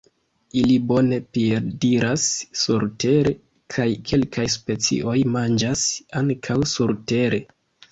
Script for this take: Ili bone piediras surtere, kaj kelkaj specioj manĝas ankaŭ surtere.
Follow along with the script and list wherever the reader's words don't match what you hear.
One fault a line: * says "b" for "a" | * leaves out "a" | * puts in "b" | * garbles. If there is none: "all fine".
all fine